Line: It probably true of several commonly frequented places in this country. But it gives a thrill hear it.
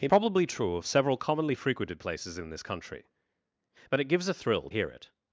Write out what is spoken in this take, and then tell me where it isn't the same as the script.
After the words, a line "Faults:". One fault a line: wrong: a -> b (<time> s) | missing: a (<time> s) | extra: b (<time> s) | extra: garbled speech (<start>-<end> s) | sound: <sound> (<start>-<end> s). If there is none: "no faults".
It probably true of several commonly frequented places in this country. But it gives a thrill hear it.
Faults:
no faults